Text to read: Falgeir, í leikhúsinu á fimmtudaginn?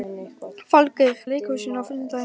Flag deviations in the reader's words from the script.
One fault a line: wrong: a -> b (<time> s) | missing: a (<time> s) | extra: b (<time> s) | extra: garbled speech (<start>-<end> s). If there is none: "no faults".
no faults